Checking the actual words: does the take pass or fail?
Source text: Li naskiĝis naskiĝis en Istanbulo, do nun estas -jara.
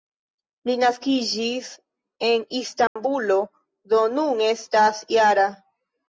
fail